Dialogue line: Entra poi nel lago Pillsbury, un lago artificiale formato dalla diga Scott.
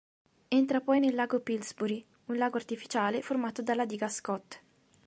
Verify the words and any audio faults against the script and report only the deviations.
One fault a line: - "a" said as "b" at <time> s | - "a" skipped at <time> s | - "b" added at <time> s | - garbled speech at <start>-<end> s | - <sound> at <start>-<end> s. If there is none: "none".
none